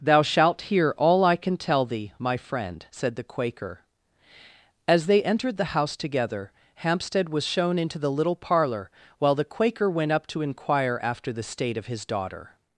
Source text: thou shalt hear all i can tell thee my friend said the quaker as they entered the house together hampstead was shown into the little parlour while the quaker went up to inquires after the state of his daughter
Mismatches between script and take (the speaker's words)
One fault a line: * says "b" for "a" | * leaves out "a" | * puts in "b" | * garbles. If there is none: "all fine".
* says "inquire" for "inquires"